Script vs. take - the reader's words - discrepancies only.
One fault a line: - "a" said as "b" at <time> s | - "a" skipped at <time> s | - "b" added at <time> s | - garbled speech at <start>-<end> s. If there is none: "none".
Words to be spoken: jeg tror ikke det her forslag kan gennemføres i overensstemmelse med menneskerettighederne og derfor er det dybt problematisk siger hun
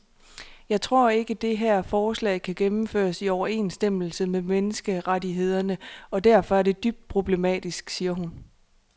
none